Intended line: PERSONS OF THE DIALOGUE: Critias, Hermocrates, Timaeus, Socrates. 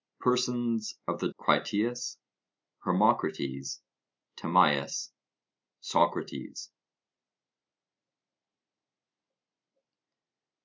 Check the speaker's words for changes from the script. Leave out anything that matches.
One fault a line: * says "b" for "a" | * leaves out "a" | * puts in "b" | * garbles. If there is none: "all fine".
* leaves out "DIALOGUE"